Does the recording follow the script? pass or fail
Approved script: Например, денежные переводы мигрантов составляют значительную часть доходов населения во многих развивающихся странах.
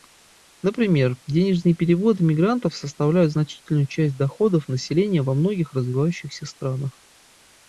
pass